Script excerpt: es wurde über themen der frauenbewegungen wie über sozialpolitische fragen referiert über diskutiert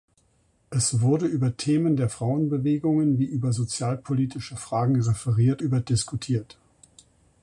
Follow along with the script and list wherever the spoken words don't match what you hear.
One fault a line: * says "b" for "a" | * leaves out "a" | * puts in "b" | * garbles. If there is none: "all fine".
all fine